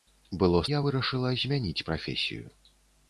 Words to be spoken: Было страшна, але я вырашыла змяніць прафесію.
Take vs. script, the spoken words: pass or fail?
fail